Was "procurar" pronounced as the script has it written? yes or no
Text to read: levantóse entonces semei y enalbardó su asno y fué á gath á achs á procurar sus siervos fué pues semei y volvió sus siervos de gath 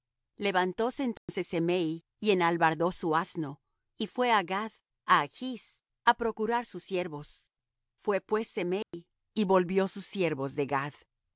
yes